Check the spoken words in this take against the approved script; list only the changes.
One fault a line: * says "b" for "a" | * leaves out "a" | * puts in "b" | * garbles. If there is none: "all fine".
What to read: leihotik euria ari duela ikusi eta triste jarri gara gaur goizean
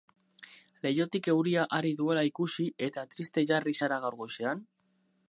* says "zara" for "gara"